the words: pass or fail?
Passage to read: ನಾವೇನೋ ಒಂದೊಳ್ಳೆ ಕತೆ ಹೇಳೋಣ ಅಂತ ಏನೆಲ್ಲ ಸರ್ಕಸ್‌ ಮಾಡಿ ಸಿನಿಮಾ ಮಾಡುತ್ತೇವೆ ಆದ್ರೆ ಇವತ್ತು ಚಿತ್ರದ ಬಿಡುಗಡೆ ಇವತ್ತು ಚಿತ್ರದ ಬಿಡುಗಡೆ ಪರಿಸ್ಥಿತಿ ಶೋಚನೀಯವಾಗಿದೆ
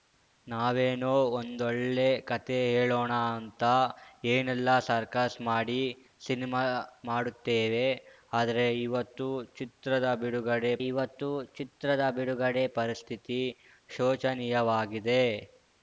pass